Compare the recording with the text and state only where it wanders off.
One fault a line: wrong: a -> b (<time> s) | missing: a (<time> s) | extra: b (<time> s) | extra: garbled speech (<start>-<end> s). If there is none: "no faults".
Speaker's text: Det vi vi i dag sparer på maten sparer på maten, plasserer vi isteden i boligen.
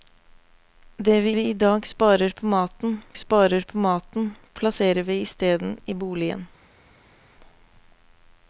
no faults